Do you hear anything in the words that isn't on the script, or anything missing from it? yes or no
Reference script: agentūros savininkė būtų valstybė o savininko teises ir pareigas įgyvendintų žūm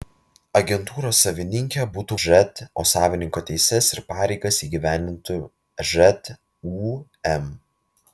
yes